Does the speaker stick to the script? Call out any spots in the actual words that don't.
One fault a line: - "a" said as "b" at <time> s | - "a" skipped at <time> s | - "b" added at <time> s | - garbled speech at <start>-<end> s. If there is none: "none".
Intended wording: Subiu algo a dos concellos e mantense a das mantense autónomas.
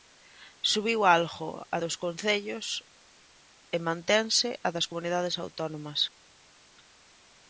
- "mantense" said as "comunidades" at 4.9 s